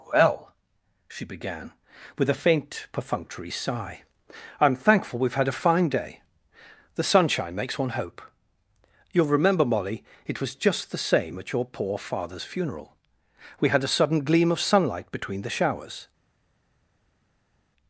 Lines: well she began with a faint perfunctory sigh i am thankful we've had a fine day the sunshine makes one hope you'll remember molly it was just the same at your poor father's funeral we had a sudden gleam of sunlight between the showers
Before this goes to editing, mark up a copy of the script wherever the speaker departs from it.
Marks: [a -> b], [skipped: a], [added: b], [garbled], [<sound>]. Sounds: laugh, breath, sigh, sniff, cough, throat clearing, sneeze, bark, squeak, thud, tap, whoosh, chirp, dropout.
well she began with a faint perfunctory sigh i am thankful we've had a fine day the sunshine makes one hope you'll remember molly it was just the same at your poor father's funeral we had a sudden gleam of sunlight between the showers